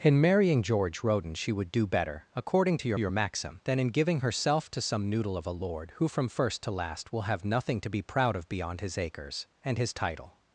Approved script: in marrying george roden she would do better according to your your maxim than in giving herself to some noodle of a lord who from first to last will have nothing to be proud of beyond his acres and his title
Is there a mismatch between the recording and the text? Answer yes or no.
no